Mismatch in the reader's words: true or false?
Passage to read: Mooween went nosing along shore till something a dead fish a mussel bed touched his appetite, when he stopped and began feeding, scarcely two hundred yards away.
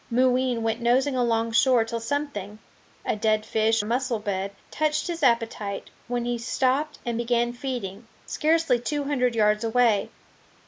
false